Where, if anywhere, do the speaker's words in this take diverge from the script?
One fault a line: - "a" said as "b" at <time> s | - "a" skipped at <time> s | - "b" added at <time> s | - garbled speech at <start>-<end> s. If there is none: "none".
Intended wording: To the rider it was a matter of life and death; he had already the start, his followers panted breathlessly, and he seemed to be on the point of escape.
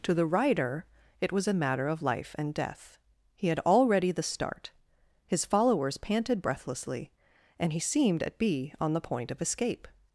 - "to" said as "at" at 8.2 s